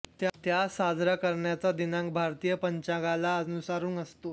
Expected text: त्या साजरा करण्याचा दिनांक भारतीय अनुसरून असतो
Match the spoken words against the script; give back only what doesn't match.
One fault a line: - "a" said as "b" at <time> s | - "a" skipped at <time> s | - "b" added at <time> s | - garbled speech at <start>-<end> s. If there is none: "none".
- "पंचांगाला" added at 2.5 s